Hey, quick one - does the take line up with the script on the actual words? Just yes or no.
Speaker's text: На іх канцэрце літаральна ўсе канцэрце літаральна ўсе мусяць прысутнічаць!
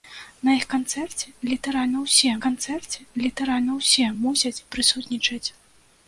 yes